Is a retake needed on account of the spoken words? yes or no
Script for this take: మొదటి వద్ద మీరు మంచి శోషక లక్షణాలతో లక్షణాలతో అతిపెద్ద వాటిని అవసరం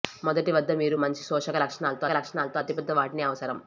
no